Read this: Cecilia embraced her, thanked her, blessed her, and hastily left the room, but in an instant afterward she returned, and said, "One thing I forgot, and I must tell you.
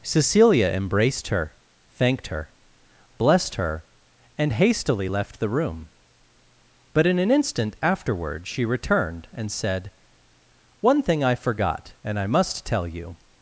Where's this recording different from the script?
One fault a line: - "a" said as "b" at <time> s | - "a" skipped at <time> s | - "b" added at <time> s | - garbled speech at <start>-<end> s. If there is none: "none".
none